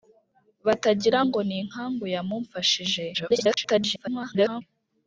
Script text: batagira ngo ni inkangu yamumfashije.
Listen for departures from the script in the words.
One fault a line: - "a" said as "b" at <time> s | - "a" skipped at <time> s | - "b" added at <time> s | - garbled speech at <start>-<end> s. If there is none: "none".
- garbled speech at 3.1-4.6 s